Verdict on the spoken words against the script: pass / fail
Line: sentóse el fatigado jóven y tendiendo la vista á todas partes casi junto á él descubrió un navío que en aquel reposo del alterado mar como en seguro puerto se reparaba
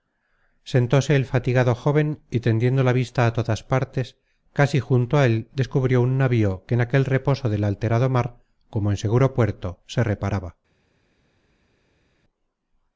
pass